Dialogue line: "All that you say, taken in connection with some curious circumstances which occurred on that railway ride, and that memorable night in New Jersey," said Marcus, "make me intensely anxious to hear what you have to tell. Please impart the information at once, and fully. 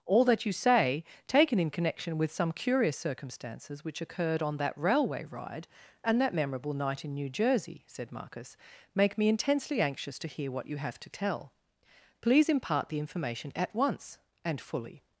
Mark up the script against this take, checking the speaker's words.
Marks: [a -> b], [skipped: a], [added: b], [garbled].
"All that you say, taken in connection with some curious circumstances which occurred on that railway ride, and that memorable night in New Jersey," said Marcus, "make me intensely anxious to hear what you have to tell. Please impart the information at once, and fully.